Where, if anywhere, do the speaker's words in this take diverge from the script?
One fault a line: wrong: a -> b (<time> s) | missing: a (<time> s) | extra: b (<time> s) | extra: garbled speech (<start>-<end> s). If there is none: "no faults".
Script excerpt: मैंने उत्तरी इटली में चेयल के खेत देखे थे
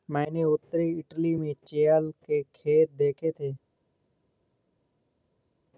no faults